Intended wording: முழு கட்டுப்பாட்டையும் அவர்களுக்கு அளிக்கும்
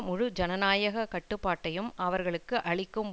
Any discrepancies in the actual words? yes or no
yes